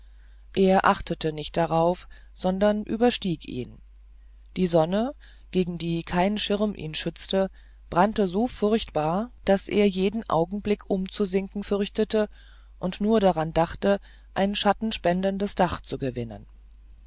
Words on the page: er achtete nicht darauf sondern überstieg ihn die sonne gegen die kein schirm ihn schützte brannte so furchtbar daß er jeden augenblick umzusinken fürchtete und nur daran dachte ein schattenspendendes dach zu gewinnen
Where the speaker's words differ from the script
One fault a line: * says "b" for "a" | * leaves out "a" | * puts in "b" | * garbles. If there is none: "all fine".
all fine